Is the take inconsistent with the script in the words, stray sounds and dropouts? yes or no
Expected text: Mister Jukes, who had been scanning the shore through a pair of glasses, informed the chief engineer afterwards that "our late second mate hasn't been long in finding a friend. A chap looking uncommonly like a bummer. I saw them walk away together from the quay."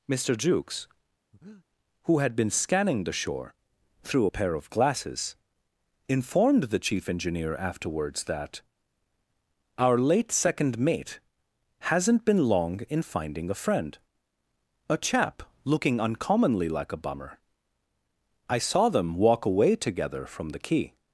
yes